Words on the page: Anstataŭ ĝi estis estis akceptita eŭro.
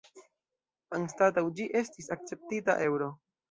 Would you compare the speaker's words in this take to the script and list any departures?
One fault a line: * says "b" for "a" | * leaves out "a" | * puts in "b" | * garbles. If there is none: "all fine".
* leaves out "estis"